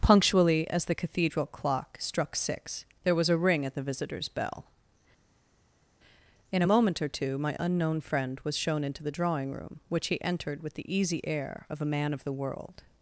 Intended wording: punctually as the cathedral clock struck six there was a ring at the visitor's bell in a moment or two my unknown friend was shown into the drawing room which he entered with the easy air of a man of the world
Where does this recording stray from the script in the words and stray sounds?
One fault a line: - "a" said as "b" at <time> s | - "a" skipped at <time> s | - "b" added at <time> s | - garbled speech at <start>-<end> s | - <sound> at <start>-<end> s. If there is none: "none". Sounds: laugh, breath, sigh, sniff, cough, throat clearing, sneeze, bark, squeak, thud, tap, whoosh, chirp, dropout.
none